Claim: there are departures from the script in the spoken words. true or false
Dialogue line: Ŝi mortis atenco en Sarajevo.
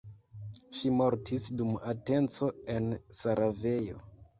true